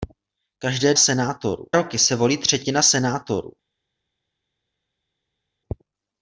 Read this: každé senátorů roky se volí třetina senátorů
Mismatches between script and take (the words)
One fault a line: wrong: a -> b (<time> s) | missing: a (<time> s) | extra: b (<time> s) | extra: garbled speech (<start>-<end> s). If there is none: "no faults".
no faults